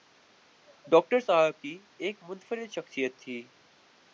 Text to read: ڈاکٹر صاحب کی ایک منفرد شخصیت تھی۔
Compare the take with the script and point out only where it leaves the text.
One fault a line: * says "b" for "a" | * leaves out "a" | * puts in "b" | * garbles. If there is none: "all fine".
all fine